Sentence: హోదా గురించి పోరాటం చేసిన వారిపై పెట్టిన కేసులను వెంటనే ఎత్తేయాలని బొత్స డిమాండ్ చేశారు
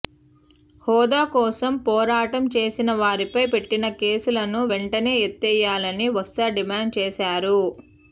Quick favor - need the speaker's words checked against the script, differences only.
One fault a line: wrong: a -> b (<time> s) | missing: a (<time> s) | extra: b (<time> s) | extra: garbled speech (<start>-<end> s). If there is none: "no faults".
wrong: గురించి -> కోసం (1.3 s)